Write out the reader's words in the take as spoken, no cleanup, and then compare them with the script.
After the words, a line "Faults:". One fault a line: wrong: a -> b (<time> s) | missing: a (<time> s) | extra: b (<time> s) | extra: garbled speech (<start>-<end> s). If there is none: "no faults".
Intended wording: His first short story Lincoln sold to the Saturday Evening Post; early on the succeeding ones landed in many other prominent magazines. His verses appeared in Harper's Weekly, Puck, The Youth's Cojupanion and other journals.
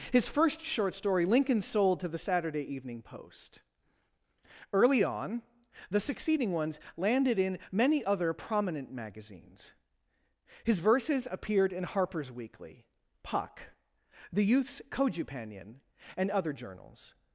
His first short story Lincoln sold to the Saturday Evening Post; early on the succeeding ones landed in many other prominent magazines. His verses appeared in Harper's Weekly, Puck, The Youth's Cojupanion and other journals.
Faults:
no faults